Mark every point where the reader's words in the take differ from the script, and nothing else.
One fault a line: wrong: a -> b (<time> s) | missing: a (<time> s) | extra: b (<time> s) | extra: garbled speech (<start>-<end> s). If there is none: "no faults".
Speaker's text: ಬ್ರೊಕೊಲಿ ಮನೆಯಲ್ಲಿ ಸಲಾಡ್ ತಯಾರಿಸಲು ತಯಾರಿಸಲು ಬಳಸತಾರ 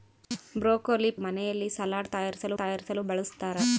no faults